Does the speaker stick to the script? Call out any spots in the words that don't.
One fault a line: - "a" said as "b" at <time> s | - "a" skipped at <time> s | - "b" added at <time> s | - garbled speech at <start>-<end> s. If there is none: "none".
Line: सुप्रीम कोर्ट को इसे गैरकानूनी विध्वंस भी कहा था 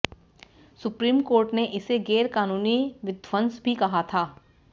- "को" said as "ने" at 1.5 s